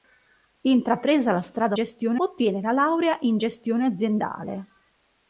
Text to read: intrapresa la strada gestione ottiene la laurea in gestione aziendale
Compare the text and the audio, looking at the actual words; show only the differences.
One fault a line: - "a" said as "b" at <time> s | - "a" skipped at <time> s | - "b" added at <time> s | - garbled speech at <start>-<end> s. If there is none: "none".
none